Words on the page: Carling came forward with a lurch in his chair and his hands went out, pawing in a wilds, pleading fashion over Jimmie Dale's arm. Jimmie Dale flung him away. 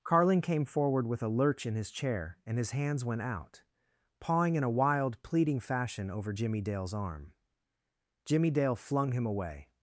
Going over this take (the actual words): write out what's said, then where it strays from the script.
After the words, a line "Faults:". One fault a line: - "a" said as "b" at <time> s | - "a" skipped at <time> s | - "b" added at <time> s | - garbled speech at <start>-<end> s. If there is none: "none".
Carling came forward with a lurch in his chair and his hands went out, pawing in a wild, pleading fashion over Jimmie Dale's arm. Jimmie Dale flung him away.
Faults:
- "wilds" said as "wild" at 4.7 s